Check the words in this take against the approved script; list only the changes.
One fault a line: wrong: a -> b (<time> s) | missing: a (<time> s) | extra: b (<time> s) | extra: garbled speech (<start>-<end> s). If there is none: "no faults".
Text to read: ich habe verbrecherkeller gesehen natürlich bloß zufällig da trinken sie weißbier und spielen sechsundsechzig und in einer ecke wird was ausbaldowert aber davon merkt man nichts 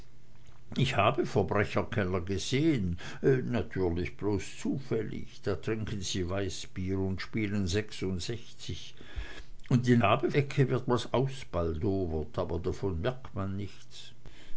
wrong: einer -> habe (10.0 s)